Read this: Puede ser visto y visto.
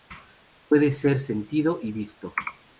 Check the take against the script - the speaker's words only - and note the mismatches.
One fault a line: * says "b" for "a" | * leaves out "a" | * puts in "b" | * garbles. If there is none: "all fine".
* says "sentido" for "visto"